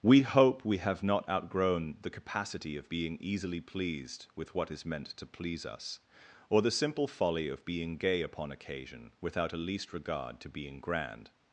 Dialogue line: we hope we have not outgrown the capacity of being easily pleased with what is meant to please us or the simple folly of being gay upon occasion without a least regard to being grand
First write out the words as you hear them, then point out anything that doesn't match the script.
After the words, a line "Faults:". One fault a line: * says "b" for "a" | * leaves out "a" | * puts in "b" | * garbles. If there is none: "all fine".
we hope we have not outgrown the capacity of being easily pleased with what is meant to please us or the simple folly of being gay upon occasion without a least regard to being grand
Faults:
all fine